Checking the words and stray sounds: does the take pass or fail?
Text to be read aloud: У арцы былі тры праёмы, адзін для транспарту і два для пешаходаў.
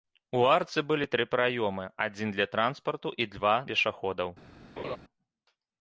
fail